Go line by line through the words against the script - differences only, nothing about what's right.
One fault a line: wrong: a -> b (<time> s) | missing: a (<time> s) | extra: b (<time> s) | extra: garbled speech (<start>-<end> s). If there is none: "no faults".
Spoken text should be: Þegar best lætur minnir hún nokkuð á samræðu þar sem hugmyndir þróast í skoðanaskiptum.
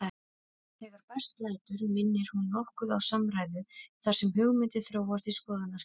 no faults